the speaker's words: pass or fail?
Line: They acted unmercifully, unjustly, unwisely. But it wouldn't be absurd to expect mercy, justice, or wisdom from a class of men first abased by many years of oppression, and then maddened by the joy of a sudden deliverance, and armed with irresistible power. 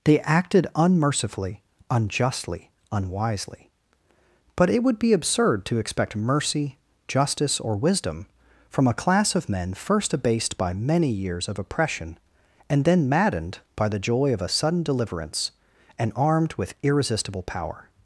fail